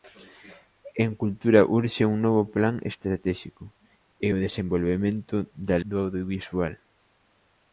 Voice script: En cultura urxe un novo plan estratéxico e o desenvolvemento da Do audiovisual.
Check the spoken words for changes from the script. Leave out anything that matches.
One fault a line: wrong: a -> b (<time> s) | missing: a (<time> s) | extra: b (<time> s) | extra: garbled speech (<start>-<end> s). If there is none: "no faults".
no faults